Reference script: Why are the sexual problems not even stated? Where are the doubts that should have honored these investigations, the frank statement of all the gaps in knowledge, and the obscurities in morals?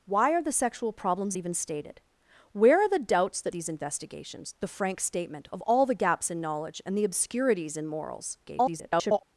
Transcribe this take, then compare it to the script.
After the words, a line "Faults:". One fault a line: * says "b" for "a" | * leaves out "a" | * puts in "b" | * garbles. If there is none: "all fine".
Why are the sexual problems even stated? Where are the doubts that these investigations, the frank statement of all the gaps in knowledge, and the obscurities in morals? [garbled]
Faults:
* leaves out "not"
* leaves out "should have honored"
* garbles